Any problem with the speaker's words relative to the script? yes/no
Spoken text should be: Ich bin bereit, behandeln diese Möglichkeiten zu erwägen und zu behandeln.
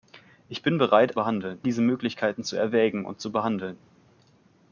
no